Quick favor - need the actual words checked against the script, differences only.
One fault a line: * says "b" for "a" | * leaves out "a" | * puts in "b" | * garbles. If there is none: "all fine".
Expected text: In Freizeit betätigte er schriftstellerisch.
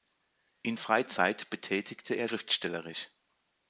all fine